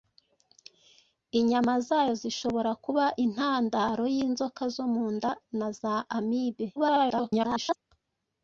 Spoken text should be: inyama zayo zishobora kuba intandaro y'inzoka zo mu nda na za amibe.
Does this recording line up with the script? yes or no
no